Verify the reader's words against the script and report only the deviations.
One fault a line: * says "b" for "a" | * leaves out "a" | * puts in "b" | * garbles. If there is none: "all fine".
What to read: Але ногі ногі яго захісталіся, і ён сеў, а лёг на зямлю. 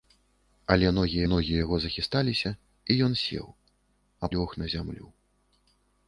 all fine